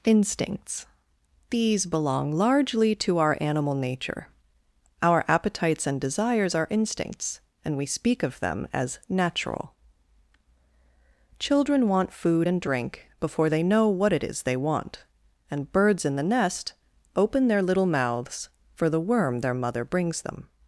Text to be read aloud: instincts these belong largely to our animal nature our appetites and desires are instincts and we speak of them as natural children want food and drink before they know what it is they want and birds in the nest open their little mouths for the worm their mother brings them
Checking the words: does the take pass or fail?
pass